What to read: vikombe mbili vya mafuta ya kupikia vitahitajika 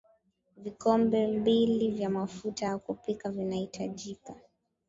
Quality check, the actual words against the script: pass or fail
pass